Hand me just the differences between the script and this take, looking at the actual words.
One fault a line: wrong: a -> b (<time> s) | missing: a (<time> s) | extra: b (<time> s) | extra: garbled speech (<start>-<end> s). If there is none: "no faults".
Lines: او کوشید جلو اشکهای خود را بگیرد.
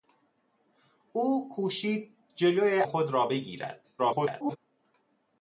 missing: اشکهای (2.8 s)
extra: garbled speech (4.0-4.6 s)